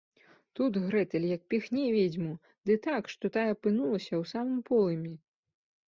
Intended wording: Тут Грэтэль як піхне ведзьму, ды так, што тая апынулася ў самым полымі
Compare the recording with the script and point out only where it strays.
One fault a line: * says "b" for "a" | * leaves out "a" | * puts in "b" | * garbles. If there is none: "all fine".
all fine